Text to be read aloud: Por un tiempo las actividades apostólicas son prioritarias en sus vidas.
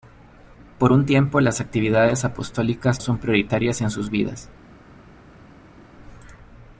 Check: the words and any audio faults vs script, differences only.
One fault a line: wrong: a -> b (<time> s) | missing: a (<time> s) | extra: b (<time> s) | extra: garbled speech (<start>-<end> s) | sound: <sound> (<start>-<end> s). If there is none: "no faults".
no faults